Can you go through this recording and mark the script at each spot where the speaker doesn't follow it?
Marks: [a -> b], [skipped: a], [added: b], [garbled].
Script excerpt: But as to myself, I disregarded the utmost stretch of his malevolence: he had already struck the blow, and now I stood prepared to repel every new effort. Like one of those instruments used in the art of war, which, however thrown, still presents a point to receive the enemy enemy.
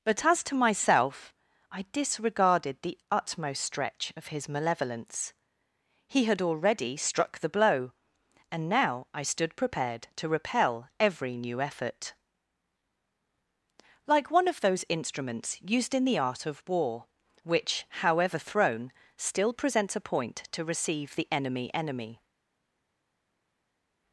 But as to myself, I disregarded the utmost stretch of his malevolence: he had already struck the blow, and now I stood prepared to repel every new effort. Like one of those instruments used in the art of war, which, however thrown, still presents a point to receive the enemy enemy.